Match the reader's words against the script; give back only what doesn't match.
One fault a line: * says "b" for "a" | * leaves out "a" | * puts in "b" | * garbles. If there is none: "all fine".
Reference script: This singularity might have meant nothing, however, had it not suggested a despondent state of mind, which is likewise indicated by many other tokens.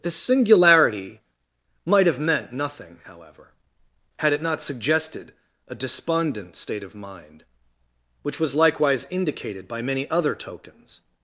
* says "was" for "is"